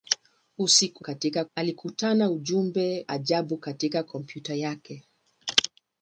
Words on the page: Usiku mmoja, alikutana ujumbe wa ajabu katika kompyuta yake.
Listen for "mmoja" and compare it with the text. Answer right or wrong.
wrong